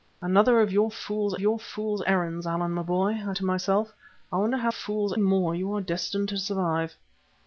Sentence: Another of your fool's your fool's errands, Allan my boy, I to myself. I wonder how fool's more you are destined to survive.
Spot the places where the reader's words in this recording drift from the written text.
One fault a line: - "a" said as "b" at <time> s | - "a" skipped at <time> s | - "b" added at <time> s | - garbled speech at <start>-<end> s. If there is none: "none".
none